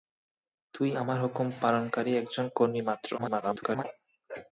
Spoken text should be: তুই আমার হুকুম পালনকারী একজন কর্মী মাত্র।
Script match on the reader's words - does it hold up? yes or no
no